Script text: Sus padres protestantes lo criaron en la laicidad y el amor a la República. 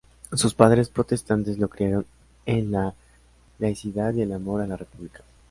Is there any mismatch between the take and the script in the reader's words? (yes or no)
no